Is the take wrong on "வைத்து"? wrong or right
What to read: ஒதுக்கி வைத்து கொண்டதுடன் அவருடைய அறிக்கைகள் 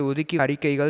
wrong